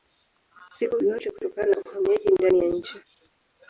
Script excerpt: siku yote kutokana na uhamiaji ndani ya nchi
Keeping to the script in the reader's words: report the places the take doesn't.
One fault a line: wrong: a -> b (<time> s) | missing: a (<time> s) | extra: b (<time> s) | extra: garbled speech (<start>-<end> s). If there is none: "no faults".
no faults